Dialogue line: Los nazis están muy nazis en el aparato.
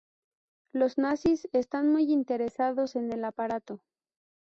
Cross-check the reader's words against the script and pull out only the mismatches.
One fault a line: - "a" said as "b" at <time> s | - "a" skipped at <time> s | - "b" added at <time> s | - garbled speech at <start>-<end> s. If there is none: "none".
- "nazis" said as "interesados" at 2.1 s